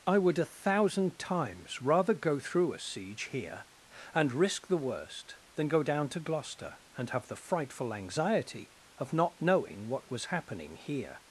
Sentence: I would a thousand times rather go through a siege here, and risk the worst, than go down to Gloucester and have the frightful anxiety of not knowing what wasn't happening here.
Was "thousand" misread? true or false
false